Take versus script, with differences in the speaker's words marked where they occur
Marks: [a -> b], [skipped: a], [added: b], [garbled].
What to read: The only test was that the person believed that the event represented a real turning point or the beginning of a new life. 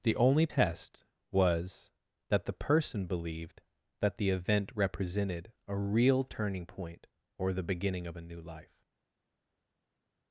The only test was that the person believed that the event represented a real turning point or the beginning of a new life.